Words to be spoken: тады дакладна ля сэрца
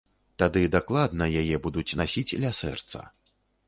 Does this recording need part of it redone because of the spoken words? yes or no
yes